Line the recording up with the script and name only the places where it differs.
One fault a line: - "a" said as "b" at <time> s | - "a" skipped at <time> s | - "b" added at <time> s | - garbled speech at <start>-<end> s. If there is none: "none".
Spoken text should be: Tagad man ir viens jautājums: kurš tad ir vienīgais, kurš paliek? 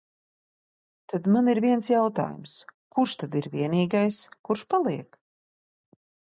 - "Tagad" said as "Tad" at 1.1 s